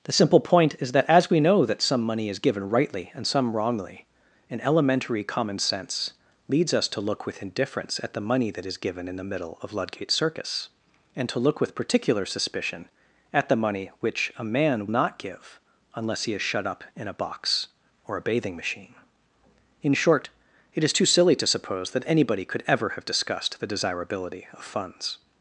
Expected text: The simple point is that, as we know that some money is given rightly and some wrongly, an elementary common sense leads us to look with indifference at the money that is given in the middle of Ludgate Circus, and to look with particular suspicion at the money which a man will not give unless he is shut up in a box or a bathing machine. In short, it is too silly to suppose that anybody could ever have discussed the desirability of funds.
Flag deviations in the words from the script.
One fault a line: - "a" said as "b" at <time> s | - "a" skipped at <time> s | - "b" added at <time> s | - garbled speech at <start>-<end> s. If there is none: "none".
- "will" skipped at 14.9 s